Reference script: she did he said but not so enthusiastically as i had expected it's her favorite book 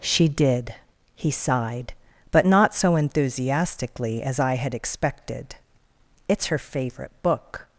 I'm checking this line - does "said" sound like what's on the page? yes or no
no